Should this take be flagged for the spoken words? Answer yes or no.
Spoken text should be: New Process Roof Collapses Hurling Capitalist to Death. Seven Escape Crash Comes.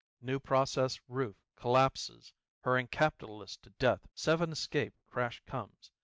no